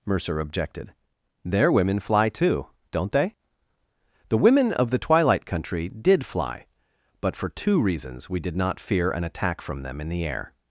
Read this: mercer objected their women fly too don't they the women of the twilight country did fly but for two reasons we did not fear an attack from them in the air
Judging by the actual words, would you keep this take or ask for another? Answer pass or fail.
pass